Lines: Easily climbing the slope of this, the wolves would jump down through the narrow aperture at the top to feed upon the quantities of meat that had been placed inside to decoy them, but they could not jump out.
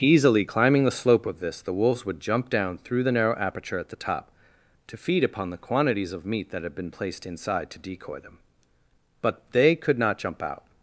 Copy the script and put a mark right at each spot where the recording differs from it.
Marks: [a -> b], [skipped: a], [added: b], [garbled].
Easily climbing the slope of this, the wolves would jump down through the narrow aperture at the top to feed upon the quantities of meat that had been placed inside to decoy them, but they could not jump out.